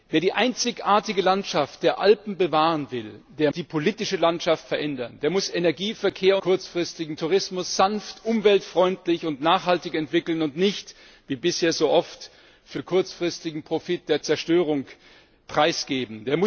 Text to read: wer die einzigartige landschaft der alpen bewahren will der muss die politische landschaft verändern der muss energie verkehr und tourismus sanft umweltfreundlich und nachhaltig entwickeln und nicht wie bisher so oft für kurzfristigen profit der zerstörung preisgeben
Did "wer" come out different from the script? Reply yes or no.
no